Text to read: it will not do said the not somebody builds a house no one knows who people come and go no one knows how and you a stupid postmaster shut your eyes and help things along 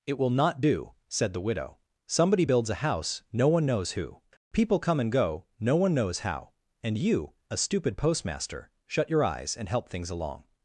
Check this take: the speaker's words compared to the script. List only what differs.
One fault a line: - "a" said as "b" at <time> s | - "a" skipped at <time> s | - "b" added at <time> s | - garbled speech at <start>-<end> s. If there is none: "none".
- "not" said as "widow" at 1.4 s